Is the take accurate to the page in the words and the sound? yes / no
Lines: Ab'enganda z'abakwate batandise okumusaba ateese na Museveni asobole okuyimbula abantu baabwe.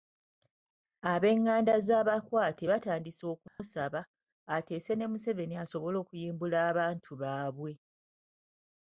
no